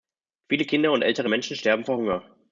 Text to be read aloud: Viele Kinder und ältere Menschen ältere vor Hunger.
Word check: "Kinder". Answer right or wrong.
right